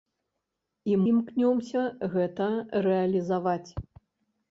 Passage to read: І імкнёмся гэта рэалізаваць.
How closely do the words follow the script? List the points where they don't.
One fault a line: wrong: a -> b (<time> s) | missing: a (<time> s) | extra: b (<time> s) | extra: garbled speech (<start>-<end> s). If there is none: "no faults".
no faults